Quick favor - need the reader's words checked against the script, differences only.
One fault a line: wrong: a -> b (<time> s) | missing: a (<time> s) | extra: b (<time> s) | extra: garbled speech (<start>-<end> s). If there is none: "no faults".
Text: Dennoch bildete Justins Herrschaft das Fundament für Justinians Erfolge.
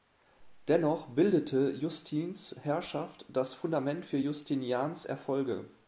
no faults